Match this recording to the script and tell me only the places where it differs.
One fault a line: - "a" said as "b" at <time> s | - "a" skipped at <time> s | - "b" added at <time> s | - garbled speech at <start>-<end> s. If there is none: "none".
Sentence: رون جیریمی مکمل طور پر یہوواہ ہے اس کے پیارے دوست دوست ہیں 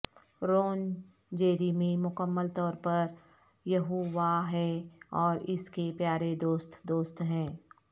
- "اور" added at 5.2 s